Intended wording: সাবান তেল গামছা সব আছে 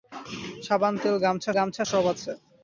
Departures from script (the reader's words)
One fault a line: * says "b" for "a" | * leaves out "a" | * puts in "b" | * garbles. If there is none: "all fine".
* puts in "গামছা"